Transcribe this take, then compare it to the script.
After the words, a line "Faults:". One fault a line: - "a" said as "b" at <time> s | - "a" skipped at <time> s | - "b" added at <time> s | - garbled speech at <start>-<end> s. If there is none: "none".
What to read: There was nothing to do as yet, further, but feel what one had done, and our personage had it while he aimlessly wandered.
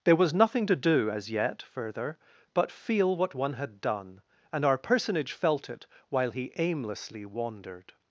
There was nothing to do as yet, further, but feel what one had done, and our personage felt it while he aimlessly wandered.
Faults:
- "had" said as "felt" at 5.3 s